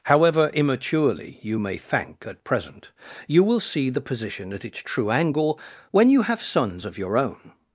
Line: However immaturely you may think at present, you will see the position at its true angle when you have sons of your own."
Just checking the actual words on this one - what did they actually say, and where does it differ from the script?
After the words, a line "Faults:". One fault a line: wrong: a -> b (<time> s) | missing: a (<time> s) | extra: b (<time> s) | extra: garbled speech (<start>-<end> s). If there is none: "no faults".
However immaturely you may thank at present, you will see the position at its true angle when you have sons of your own."
Faults:
wrong: think -> thank (1.8 s)